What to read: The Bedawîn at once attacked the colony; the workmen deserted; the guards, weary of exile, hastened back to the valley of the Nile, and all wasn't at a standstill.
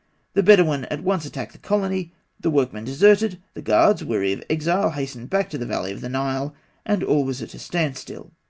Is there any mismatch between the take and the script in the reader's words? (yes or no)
yes